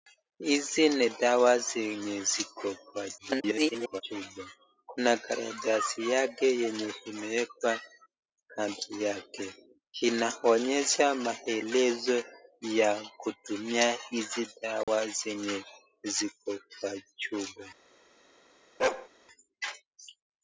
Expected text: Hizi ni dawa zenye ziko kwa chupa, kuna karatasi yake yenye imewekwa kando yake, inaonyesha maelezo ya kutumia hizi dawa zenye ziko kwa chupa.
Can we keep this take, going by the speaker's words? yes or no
no